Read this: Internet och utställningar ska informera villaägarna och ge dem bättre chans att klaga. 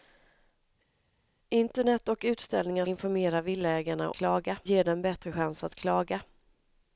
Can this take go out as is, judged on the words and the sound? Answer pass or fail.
fail